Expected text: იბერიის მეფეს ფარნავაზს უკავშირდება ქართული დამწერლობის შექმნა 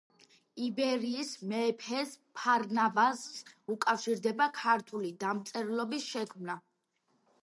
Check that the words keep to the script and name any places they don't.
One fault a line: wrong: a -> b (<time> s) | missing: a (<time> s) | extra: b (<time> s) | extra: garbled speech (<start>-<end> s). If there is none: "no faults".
no faults